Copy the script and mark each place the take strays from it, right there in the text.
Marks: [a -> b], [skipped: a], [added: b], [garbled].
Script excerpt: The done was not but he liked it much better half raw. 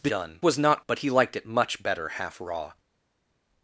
The done was not but he liked it much better half raw.